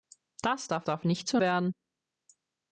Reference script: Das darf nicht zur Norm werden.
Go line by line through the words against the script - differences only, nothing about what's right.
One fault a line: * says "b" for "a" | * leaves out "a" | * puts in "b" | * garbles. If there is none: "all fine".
* puts in "darf"
* leaves out "Norm"